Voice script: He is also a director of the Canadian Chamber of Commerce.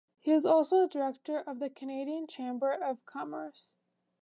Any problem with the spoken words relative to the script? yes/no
no